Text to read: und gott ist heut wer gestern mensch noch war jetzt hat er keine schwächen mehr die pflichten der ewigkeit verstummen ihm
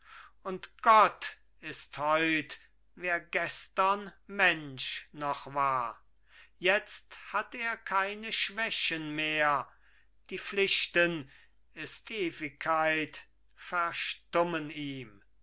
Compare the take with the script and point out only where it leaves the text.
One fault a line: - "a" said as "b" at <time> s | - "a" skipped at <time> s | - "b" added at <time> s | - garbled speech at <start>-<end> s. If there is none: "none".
- "der" said as "ist" at 11.7 s